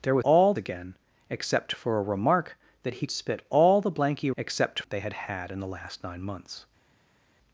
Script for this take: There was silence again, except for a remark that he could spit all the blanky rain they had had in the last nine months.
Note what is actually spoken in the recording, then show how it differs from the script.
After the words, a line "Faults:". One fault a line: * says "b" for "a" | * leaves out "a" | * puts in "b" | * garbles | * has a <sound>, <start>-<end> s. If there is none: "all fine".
There was all again, except for a remark that he spit all the blanky except they had had in the last nine months.
Faults:
* says "all" for "silence"
* leaves out "could"
* says "except" for "rain"